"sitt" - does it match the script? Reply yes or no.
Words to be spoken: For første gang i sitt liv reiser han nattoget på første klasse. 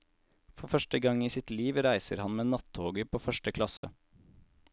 yes